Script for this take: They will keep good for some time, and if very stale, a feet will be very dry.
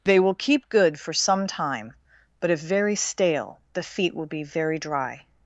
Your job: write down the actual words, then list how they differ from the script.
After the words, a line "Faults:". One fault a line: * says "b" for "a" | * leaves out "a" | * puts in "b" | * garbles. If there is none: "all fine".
They will keep good for some time, but if very stale, the feet will be very dry.
Faults:
* says "but" for "and"
* says "the" for "a"